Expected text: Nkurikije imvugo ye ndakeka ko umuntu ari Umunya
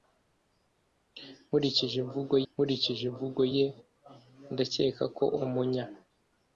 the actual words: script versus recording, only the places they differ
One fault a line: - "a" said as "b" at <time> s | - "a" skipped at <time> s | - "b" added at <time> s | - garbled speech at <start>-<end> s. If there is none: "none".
- "nkurikije imvugo" added at 2.5 s
- "umuntu ari" skipped at 5.2 s